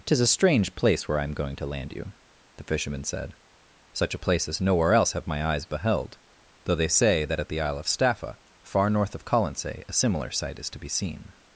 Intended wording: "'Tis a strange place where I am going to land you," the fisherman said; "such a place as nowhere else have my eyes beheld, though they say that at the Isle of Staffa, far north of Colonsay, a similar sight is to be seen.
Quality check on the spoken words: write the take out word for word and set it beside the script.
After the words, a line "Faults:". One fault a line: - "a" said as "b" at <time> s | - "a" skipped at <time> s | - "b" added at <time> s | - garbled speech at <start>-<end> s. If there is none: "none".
"'Tis a strange place where I am going to land you," the fisherman said; "such a place as nowhere else have my eyes beheld, though they say that at the Isle of Staffa, far north of Colonsay, a similar sight is to be seen.
Faults:
none